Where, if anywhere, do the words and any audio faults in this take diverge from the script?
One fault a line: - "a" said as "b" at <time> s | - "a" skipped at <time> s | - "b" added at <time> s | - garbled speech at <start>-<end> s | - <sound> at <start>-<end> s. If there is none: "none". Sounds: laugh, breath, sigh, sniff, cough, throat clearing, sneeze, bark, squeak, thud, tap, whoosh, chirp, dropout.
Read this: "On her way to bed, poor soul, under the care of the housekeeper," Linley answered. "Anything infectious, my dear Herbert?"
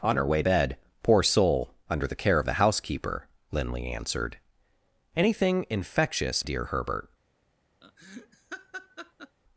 - "to" skipped at 0.4 s
- "my" skipped at 6.5 s
- laugh at 7.8-9.4 s